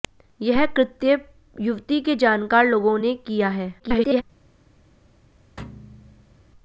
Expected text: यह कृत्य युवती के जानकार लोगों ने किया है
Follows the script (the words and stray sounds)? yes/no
no